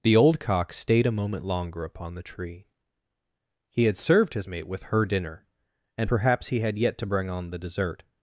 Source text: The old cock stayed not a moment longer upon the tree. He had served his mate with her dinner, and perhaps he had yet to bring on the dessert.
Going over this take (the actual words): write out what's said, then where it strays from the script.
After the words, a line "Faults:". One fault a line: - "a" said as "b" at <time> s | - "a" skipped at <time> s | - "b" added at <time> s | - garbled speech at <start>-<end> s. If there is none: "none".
The old cock stayed a moment longer upon the tree. He had served his mate with her dinner, and perhaps he had yet to bring on the dessert.
Faults:
- "not" skipped at 1.1 s